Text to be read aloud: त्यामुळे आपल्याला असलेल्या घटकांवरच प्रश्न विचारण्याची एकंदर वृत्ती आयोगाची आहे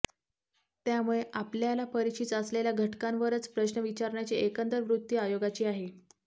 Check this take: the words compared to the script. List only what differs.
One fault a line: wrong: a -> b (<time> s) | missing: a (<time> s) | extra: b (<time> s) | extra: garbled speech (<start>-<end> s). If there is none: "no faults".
extra: परिचित (1.9 s)